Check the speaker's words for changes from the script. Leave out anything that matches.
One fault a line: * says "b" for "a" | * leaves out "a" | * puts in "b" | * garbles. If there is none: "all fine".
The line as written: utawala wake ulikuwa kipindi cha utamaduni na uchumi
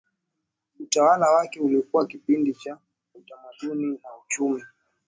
all fine